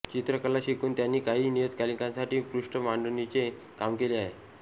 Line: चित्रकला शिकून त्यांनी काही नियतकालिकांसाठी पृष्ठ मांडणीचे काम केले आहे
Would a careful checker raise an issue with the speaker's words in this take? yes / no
no